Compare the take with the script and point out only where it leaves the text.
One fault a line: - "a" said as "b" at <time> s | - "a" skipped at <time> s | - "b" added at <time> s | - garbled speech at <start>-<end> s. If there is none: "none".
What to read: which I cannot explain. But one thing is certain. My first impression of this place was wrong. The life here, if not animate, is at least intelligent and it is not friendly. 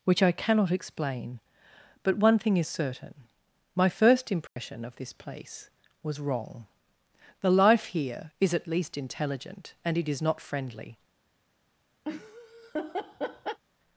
- "if not animate" skipped at 8.3 s